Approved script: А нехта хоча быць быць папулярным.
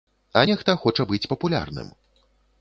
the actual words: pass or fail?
fail